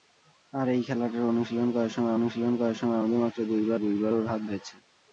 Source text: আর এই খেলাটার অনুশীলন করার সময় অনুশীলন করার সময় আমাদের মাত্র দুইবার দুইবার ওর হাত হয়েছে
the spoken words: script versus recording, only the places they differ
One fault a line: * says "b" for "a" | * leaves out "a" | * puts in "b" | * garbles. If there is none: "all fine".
all fine